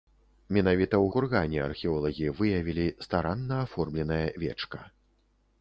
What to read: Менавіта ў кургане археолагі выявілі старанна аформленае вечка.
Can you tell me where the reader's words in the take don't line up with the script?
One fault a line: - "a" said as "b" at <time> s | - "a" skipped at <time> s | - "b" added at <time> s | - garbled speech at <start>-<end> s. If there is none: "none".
none